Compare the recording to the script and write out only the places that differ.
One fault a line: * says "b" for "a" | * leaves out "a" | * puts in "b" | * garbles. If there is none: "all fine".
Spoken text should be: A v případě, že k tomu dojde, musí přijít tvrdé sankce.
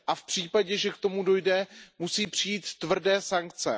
all fine